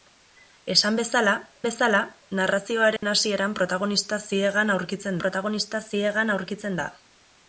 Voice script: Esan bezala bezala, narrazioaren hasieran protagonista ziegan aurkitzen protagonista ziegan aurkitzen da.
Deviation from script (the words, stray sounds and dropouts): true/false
true